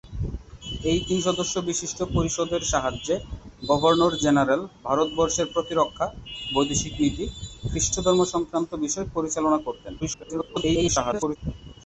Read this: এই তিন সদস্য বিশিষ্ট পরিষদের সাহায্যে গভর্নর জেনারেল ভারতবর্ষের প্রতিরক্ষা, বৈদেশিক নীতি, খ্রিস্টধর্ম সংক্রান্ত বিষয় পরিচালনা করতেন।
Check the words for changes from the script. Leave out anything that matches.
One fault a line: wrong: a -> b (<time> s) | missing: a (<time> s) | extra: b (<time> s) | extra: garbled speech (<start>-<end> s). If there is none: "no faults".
extra: garbled speech (10.0-11.4 s)